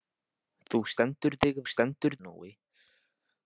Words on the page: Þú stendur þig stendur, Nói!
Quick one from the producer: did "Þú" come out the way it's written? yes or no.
yes